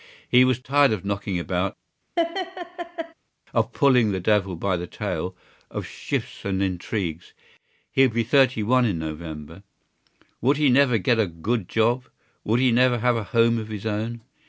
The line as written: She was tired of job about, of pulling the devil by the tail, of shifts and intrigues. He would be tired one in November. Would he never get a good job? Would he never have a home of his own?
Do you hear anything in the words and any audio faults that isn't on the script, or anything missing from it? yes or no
yes